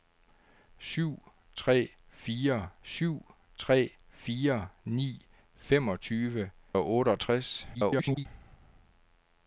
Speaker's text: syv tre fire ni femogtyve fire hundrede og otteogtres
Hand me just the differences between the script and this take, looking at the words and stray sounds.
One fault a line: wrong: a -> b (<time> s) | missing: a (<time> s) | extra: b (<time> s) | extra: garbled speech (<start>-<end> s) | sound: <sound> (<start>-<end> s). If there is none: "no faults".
wrong: ni femogtyve -> syv tre (2.8 s)
wrong: hundrede -> ni femogtyve (4.8 s)
extra: garbled speech (7.7-8.3 s)